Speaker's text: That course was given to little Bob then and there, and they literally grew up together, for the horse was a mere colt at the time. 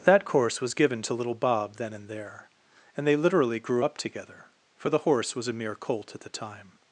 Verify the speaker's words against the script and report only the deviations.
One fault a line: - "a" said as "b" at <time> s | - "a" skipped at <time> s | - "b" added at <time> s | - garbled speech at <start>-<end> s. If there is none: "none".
none